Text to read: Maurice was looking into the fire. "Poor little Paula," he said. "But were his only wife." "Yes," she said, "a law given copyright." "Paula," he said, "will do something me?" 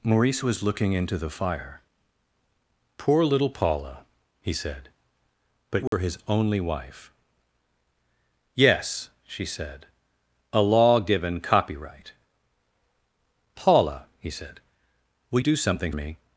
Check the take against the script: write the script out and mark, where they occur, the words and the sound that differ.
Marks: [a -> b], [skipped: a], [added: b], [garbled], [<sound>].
Maurice was looking into the fire. "Poor little Paula," he said. "But were [dropout] his only wife." "Yes," she said, "a law given copyright." "Paula," he said, "will do something me?"